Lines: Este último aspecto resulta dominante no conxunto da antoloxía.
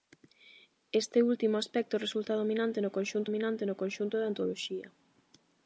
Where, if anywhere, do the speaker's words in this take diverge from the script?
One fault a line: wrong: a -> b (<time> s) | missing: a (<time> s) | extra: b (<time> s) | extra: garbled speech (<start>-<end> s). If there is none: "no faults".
extra: dominante no conxunto (3.2 s)